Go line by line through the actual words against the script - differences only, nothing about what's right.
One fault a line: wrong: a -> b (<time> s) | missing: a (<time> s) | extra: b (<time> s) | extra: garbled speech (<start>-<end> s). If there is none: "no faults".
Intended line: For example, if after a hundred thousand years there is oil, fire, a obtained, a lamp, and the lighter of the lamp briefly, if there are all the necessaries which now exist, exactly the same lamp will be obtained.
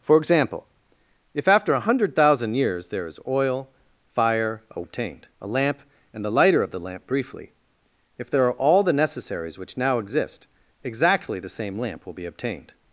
no faults